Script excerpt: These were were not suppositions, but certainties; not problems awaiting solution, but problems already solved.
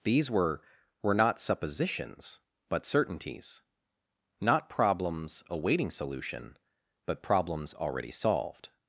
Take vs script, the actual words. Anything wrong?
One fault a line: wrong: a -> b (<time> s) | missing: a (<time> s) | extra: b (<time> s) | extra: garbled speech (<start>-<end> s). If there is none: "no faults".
no faults